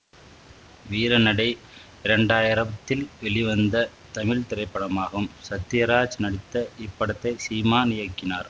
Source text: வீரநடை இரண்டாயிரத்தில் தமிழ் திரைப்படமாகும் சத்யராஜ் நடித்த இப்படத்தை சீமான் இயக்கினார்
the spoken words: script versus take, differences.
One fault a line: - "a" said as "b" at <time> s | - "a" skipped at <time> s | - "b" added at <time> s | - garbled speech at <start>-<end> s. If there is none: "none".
- "வெளிவந்த" added at 3.2 s